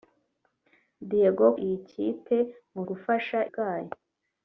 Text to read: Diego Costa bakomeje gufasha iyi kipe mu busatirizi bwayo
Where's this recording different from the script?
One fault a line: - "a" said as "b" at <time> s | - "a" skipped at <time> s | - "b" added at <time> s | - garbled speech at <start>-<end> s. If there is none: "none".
- "Costa bakomeje gufasha" skipped at 1.4 s
- "busatirizi" said as "gufasha" at 2.9 s